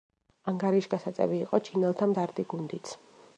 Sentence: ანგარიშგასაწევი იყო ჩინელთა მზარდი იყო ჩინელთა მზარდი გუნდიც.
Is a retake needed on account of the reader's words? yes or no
yes